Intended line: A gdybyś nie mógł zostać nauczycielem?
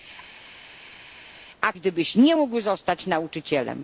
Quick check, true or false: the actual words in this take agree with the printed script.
true